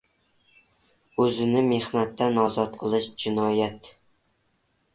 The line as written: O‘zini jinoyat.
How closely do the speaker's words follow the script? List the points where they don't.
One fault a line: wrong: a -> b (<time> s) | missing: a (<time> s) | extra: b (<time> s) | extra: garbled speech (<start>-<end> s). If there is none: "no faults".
extra: mehnatdan ozod qilish (1.7 s)